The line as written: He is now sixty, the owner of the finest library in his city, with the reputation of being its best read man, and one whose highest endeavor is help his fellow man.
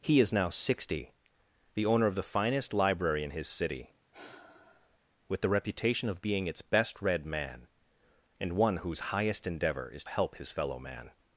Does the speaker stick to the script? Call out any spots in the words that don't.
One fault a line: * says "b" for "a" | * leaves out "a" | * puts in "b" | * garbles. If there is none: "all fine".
all fine